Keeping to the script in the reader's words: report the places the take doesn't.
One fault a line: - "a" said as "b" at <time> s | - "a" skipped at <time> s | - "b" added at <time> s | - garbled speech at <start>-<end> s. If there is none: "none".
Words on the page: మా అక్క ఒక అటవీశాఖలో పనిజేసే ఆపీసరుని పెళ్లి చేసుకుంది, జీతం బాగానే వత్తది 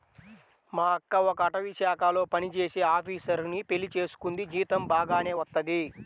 none